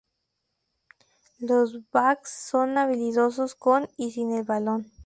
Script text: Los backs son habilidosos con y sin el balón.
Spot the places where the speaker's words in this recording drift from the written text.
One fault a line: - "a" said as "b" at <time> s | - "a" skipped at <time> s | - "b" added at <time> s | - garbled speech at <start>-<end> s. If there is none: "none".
none